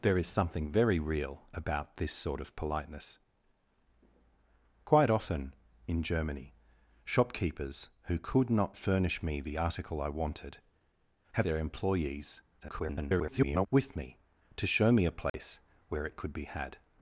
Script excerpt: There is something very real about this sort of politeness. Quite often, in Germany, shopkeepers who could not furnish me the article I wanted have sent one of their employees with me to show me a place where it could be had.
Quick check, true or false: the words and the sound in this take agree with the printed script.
false